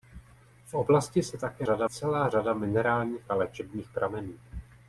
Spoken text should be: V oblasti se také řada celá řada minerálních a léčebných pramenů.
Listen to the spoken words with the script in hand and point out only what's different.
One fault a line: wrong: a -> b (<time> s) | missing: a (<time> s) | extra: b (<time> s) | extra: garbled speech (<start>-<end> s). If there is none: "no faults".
no faults